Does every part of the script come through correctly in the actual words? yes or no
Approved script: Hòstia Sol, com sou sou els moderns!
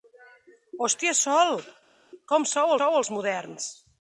yes